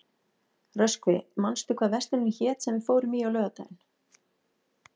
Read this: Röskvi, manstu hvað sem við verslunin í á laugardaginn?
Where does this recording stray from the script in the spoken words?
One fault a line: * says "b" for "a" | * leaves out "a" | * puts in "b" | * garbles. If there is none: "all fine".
* puts in "verslunin hét"
* says "fórum" for "verslunin"